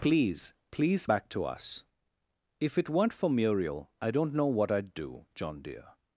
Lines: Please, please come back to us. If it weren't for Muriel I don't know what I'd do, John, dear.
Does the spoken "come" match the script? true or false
false